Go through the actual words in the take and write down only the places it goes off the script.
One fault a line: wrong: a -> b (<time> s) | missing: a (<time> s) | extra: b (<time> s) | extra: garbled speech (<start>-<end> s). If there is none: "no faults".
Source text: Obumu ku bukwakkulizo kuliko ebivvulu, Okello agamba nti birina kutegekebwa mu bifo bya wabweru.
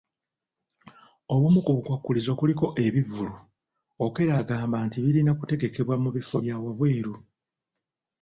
no faults